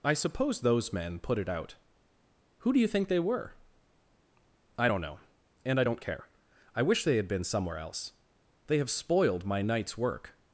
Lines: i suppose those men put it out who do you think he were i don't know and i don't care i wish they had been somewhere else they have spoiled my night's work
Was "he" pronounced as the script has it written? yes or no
no